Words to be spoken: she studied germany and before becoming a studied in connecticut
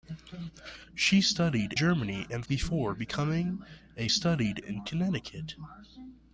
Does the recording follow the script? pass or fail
pass